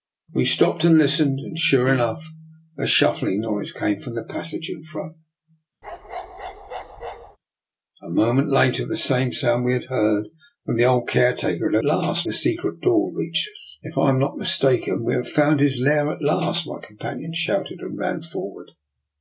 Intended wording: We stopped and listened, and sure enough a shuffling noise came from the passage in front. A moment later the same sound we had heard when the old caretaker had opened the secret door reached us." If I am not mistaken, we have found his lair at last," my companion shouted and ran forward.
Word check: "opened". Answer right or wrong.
wrong